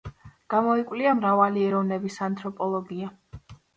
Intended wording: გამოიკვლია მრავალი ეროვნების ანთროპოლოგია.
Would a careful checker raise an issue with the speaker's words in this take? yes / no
no